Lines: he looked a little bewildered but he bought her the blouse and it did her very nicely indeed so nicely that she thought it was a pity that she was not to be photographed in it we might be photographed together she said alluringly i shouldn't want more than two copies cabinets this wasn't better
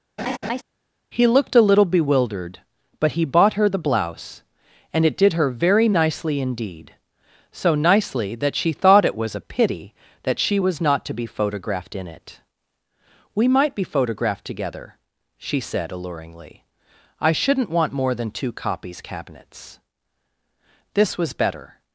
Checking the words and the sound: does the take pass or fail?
fail